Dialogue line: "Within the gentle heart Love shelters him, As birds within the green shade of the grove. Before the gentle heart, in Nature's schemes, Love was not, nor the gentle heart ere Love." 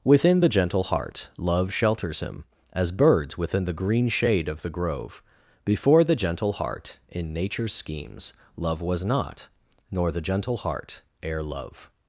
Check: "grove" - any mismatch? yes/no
no